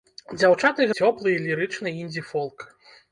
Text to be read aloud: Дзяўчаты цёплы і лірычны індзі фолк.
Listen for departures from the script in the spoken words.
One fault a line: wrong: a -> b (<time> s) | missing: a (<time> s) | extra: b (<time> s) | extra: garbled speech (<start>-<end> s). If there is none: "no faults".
no faults